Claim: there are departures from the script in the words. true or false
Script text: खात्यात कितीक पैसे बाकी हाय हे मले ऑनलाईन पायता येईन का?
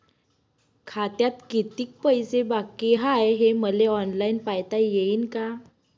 false